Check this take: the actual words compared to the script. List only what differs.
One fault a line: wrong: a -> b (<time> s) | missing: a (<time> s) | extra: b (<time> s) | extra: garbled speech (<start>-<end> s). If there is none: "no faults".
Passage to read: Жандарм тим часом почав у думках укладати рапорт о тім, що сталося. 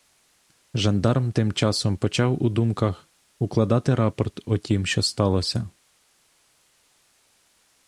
no faults